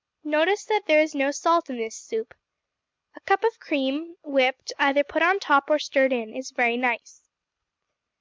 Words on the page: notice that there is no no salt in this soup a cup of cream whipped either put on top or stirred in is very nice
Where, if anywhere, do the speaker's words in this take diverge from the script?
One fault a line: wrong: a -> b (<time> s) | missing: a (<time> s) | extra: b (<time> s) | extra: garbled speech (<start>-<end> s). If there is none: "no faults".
missing: no (1.3 s)